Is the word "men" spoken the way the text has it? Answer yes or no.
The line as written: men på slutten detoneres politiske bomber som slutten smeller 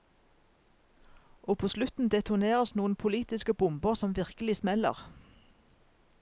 no